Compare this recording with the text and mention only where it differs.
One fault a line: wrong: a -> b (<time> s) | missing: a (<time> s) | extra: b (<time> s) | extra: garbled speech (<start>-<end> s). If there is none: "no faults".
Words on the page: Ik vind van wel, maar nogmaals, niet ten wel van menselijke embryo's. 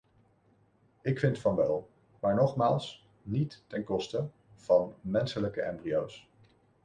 wrong: wel -> koste (3.8 s)